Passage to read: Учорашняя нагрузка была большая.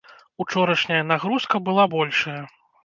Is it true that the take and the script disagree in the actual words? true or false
false